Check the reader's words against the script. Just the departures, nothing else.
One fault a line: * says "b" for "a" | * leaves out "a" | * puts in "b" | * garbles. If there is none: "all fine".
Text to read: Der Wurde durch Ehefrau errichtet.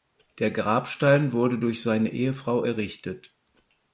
* puts in "Grabstein"
* puts in "seine"